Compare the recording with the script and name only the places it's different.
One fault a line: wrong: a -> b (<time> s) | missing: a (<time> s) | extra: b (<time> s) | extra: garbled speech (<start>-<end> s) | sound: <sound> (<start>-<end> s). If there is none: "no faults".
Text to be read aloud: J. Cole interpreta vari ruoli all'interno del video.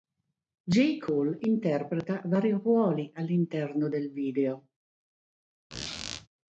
sound: squeak (5.7-6.3 s)